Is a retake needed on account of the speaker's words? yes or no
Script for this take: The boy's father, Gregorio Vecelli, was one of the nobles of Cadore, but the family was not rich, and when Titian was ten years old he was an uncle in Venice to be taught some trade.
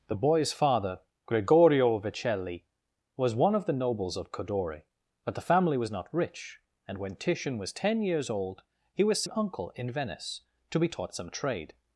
no